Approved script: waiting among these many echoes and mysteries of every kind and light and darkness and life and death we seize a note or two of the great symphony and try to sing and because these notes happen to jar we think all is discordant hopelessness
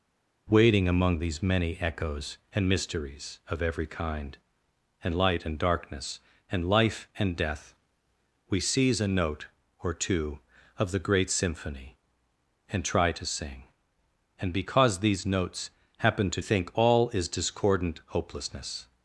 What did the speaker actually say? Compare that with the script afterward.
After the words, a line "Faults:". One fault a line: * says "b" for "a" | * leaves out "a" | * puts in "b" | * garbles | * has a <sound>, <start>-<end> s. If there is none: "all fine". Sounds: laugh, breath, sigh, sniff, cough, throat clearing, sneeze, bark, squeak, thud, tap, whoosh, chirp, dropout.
waiting among these many echoes and mysteries of every kind and light and darkness and life and death we seize a note or two of the great symphony and try to sing and because these notes happen to think all is discordant hopelessness
Faults:
* leaves out "jar we"